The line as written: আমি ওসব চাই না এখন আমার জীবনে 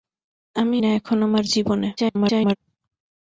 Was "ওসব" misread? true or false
true